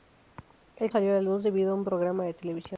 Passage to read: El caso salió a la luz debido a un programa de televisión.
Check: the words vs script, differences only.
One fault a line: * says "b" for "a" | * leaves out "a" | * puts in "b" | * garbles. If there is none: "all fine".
* leaves out "caso"